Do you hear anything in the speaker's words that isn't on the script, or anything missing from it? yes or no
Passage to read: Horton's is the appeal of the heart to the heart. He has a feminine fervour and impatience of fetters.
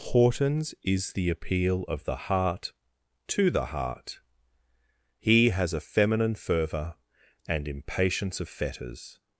no